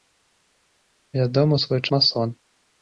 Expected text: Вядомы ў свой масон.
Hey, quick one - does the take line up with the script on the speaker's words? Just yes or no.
yes